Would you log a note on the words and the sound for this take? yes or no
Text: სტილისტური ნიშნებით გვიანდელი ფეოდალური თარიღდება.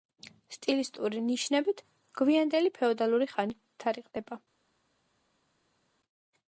yes